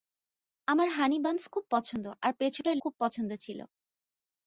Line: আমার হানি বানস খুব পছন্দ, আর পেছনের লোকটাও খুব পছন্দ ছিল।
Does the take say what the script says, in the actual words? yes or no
no